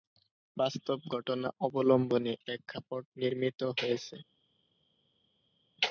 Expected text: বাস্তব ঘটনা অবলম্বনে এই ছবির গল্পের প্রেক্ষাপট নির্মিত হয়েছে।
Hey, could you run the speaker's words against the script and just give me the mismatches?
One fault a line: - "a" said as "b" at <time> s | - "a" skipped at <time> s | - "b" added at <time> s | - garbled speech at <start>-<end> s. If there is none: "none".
- "এই ছবির গল্পের" skipped at 2.3 s